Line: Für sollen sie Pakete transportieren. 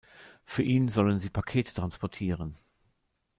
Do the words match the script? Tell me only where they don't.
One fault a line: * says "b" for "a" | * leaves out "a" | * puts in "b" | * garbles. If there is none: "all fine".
* puts in "ihn"